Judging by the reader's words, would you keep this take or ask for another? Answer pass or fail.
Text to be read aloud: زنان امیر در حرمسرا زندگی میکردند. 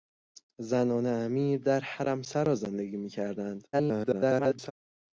fail